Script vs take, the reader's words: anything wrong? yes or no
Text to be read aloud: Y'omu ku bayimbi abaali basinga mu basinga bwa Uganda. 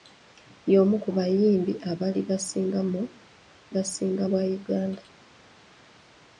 no